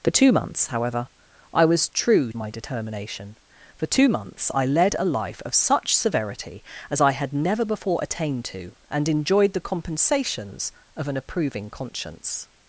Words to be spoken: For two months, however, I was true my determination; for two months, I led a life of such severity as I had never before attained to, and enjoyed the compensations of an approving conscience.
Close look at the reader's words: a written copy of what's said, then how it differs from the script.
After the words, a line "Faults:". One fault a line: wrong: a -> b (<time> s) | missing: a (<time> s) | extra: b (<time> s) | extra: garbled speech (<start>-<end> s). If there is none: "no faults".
For two months, however, I was true my determination; for two months, I led a life of such severity as I had never before attained to, and enjoyed the compensations of an approving conscience.
Faults:
no faults